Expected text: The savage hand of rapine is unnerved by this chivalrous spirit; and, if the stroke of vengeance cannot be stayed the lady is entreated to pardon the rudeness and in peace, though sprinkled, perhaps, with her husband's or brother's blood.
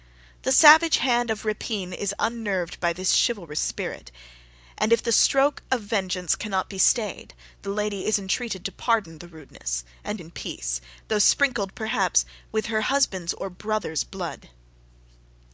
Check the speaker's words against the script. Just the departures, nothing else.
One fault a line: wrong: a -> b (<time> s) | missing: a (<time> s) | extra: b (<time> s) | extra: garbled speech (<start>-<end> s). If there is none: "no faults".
no faults